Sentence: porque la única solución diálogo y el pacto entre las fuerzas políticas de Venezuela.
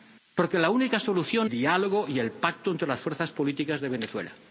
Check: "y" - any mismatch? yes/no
no